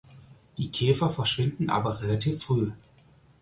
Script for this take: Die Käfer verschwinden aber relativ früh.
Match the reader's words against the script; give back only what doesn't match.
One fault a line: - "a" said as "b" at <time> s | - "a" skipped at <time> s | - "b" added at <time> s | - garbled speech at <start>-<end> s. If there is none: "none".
none